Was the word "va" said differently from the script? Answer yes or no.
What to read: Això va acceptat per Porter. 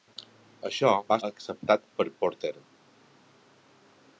no